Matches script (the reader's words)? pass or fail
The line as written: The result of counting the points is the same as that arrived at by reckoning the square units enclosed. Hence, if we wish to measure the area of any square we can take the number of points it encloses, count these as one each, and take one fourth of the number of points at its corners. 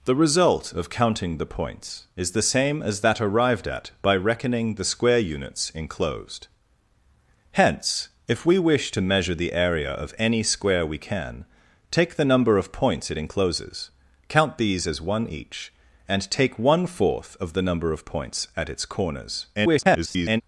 fail